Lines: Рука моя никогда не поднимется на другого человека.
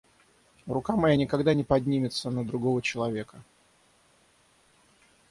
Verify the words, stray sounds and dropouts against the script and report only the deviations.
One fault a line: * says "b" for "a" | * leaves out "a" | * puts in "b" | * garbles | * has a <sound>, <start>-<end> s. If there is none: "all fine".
all fine